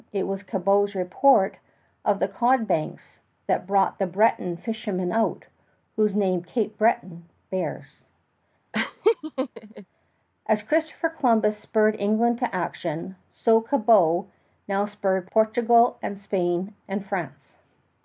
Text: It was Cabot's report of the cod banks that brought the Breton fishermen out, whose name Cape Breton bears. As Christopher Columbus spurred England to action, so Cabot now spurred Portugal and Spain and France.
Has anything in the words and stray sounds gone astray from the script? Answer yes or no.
yes